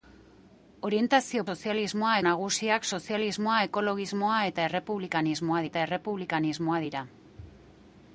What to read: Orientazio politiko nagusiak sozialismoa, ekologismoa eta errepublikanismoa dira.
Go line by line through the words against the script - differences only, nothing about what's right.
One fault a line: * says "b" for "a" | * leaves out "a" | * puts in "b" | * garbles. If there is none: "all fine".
* says "sozialismoa" for "politiko"
* puts in "eta errepublikanismoa"